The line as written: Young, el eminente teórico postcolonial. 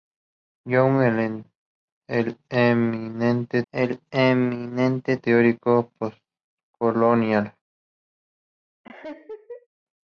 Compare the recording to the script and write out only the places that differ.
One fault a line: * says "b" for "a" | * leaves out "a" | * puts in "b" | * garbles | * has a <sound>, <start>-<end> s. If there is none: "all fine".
* puts in "el eminente"
* has a laugh, 8.8-9.7 s